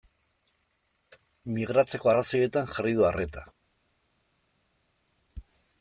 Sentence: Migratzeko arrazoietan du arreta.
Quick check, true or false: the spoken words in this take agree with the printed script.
false